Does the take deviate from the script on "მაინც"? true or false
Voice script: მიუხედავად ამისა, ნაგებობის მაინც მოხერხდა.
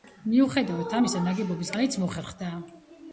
false